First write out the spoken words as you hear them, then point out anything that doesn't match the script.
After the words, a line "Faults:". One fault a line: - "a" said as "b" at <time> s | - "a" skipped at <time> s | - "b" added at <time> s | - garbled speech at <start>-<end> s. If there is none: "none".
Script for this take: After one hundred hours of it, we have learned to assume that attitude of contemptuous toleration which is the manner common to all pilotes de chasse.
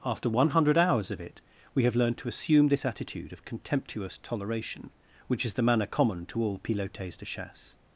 After one hundred hours of it, we have learned to assume this attitude of contemptuous toleration which is the manner common to all pilotes de chasse.
Faults:
- "that" said as "this" at 2.7 s